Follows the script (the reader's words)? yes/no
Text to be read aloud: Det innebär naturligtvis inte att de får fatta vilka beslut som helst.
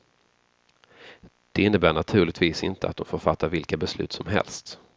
yes